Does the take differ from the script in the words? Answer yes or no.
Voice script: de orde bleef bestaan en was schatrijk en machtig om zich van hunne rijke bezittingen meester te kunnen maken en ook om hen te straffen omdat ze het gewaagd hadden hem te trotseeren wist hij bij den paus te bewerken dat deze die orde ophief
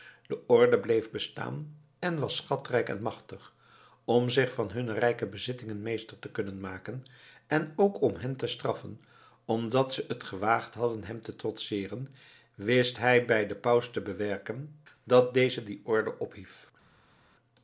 no